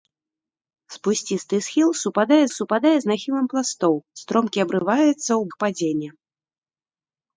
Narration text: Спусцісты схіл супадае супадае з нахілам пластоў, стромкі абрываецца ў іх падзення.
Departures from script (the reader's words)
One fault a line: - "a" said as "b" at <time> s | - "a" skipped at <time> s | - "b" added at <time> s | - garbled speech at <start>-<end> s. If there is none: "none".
none